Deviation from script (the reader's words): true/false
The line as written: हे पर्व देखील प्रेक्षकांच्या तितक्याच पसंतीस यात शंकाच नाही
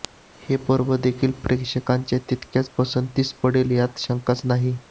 true